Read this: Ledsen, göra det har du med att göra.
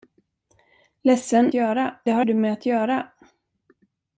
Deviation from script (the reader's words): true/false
false